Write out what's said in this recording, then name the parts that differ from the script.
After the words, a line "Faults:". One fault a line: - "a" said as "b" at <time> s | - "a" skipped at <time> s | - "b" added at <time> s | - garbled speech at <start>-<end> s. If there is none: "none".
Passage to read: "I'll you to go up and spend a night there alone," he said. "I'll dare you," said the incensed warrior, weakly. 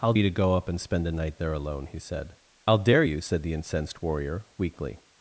"I'll you to go up and spend a night there alone," he said. "I'll dare you," said the incensed warrior, weakly.
Faults:
none